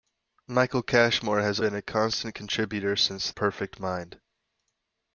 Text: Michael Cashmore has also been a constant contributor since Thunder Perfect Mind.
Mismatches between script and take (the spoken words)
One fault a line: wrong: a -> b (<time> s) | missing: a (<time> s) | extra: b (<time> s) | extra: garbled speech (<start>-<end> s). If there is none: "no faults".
missing: also (1.6 s)
missing: Thunder (3.3 s)